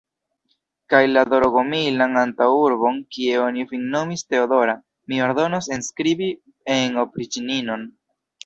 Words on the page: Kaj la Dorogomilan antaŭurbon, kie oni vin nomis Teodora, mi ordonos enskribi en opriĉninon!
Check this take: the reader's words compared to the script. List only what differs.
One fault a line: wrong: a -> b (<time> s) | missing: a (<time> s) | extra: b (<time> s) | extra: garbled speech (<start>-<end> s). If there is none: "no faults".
no faults